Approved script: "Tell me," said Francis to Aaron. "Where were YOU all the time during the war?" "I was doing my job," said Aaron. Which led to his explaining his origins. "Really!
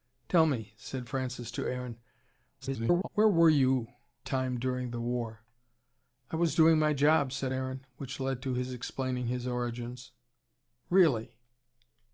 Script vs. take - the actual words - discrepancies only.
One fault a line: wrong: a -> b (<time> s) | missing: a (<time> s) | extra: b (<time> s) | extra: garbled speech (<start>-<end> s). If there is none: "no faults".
extra: garbled speech (2.6-3.1 s)
missing: all the (3.9 s)